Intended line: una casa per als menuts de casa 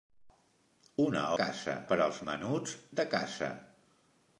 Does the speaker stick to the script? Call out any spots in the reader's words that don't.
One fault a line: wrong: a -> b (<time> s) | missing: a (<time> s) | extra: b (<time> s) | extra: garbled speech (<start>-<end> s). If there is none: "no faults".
no faults